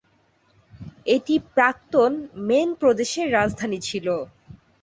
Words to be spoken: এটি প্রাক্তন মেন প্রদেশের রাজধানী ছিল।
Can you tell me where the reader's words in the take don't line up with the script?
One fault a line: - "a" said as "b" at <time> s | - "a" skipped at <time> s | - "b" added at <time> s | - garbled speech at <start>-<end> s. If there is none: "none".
none